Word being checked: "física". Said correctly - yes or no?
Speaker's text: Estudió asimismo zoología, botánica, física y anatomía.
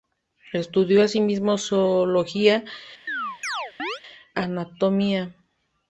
no